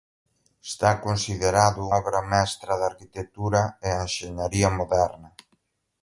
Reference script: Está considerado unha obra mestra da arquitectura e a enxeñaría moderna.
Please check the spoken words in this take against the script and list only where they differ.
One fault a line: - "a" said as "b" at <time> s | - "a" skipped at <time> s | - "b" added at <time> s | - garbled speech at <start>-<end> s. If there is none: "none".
- "unha" skipped at 1.8 s